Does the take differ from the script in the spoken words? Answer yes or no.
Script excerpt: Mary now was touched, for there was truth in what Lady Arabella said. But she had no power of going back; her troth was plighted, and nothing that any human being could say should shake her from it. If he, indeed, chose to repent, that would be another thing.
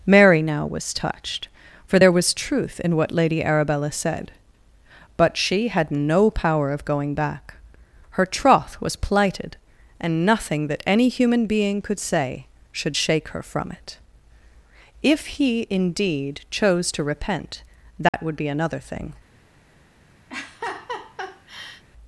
no